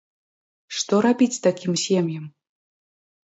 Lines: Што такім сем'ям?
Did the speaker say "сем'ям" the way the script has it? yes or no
yes